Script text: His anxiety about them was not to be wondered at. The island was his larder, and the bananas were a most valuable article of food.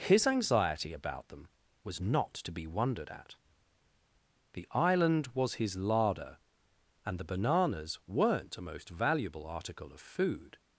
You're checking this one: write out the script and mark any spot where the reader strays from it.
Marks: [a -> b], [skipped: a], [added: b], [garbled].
His anxiety about them was not to be wondered at. The island was his larder, and the bananas [were -> weren't] a most valuable article of food.